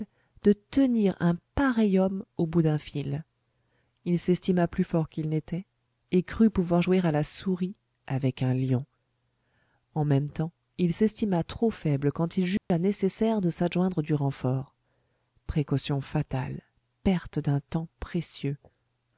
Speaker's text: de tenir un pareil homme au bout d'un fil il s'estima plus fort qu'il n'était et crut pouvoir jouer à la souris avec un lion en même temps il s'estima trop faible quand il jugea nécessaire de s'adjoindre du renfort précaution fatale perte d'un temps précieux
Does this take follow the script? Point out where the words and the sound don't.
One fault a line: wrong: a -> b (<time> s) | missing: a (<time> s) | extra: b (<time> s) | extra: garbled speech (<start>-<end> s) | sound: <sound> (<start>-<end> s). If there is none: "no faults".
sound: dropout (12.6-12.7 s)